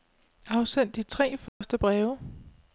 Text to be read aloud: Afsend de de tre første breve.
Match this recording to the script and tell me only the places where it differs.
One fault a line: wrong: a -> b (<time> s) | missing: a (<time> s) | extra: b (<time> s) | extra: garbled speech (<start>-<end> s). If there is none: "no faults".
missing: de (1.0 s)